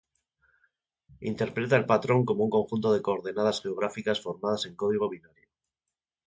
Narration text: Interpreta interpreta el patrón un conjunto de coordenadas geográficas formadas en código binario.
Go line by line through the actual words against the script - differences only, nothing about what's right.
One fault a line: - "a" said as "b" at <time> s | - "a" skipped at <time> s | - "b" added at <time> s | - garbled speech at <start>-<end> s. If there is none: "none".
- "interpreta" skipped at 1.8 s
- "como" added at 2.2 s